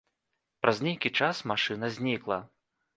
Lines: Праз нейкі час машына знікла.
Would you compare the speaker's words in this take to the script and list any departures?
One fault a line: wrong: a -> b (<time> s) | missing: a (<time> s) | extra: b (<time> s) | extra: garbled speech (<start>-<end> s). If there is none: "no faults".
no faults